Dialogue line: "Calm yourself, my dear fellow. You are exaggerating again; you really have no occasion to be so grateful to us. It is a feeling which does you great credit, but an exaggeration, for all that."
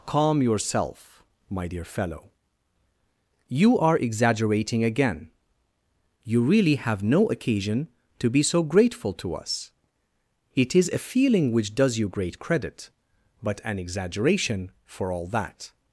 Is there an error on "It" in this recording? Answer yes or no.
no